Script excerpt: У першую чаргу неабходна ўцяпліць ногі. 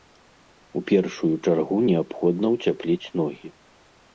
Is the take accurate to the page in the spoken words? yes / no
yes